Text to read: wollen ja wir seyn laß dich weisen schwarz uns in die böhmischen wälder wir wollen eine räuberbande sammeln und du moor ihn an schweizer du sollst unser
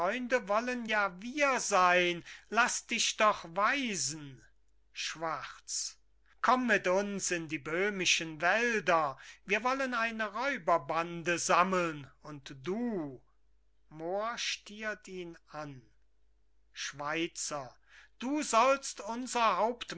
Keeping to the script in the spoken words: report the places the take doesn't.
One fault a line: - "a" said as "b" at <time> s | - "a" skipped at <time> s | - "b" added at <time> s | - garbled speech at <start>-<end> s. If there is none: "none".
- "doch" added at 3.2 s
- "komm mit" added at 6.4 s
- "stiert" added at 14.4 s